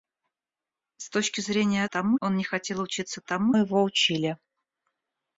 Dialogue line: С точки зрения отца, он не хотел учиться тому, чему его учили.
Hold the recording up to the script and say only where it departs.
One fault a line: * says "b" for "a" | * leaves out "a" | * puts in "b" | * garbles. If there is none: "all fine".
* says "тому" for "отца"
* leaves out "чему"